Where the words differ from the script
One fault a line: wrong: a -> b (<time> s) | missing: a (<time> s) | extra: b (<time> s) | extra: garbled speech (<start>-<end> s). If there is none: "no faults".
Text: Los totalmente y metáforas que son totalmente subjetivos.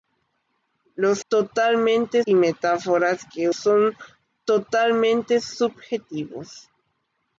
no faults